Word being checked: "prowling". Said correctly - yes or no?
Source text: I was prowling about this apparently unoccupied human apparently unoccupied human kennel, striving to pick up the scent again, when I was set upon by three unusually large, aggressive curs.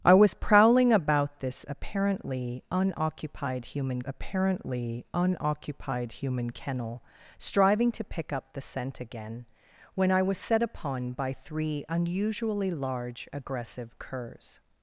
yes